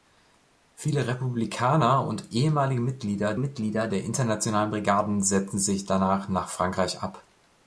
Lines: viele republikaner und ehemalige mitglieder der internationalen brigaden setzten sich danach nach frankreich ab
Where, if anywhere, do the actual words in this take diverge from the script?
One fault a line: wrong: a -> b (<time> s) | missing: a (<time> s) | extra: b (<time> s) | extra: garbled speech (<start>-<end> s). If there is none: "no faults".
extra: mitglieder (3.4 s)